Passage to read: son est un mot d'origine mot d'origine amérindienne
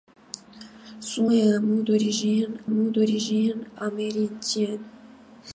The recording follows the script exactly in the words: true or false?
true